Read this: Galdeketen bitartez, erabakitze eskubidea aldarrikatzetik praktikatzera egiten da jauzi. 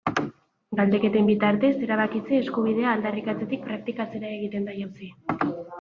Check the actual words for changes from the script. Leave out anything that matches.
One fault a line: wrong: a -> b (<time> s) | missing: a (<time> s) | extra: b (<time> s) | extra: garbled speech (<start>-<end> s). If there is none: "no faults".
no faults